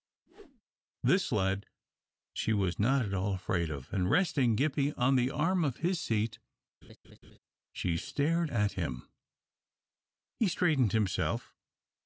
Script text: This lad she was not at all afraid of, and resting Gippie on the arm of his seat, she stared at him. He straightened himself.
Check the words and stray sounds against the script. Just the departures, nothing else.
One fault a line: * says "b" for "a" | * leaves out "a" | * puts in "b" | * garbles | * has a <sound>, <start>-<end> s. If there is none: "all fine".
* has a whoosh, 0.3-0.6 s
* has a laugh, 6.8-7.4 s